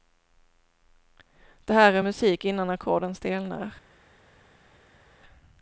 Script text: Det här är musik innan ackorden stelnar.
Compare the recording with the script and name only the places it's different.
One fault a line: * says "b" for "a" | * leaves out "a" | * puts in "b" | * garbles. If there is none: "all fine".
all fine